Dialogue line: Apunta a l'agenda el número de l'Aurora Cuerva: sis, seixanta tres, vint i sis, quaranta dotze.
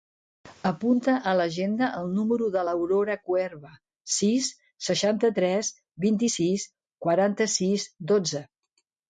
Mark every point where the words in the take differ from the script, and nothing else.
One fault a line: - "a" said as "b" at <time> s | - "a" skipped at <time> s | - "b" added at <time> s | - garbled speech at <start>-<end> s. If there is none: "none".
- "sis" added at 7.6 s